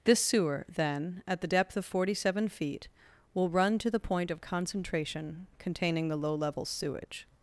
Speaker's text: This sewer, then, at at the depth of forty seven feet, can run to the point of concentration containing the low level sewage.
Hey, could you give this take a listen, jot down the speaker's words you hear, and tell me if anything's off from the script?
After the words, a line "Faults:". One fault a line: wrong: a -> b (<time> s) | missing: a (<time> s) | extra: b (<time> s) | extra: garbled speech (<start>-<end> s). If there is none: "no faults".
This sewer, then, at the depth of forty seven feet, will run to the point of concentration containing the low level sewage.
Faults:
missing: at (1.4 s)
wrong: can -> will (3.3 s)